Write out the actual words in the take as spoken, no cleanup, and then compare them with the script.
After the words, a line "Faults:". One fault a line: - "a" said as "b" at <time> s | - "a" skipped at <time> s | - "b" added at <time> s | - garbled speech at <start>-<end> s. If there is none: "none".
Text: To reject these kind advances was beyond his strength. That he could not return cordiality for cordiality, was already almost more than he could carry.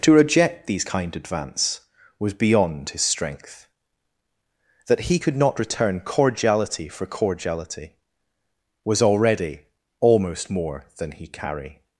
To reject these kind advance was beyond his strength. That he could not return cordiality for cordiality, was already almost more than he carry.
Faults:
- "advances" said as "advance" at 1.1 s
- "could" skipped at 11.3 s